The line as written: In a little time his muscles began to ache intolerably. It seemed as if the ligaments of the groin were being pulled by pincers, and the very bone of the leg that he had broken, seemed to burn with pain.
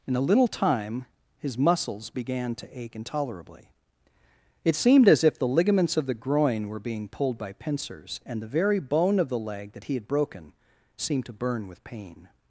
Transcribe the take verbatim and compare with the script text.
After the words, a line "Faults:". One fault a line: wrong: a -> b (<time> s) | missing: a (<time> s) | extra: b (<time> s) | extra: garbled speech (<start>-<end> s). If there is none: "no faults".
In a little time his muscles began to ache intolerably. It seemed as if the ligaments of the groin were being pulled by pincers, and the very bone of the leg that he had broken, seemed to burn with pain.
Faults:
no faults